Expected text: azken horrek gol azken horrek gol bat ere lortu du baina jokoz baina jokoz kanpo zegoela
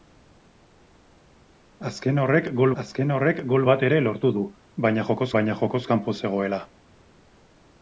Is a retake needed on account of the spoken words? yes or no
no